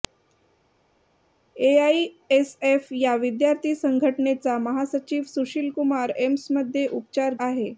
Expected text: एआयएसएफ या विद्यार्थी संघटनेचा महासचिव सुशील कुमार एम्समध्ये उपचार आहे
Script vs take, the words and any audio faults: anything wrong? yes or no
no